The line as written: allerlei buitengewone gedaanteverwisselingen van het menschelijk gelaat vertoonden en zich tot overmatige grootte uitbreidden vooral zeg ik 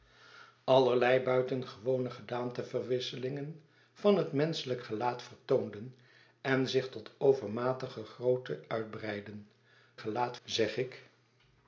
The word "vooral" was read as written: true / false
false